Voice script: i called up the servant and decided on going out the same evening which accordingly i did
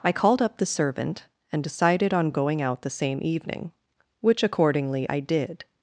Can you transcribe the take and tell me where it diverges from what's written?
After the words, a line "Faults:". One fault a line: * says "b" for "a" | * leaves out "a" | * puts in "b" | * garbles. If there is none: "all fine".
i called up the servant and decided on going out the same evening which accordingly i did
Faults:
all fine